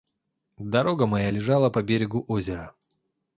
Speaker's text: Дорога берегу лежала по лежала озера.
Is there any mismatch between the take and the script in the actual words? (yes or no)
yes